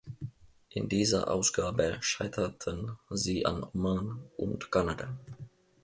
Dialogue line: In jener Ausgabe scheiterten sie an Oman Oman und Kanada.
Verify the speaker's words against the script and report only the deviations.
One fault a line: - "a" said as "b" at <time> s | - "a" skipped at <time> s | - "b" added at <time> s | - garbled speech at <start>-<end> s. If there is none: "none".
- "jener" said as "dieser" at 0.9 s
- "Oman" skipped at 4.3 s